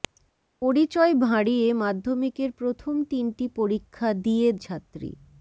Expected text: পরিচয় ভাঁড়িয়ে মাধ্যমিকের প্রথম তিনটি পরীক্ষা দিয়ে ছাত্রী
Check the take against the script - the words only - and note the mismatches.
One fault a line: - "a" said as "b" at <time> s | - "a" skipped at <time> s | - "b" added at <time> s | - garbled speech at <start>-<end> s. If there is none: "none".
none